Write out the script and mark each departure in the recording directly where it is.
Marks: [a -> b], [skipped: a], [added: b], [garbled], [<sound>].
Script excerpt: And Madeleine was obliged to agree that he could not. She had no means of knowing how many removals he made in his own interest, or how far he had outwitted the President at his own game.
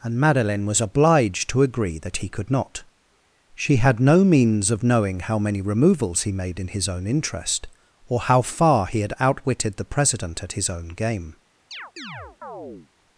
And Madeleine was obliged to agree that he could not. She had no means of knowing how many removals he made in his own interest, or how far he had outwitted the President at his own game. [chirp]